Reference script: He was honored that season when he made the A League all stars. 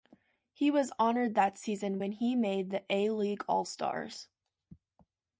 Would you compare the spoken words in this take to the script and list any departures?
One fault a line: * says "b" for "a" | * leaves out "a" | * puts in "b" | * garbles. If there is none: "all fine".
all fine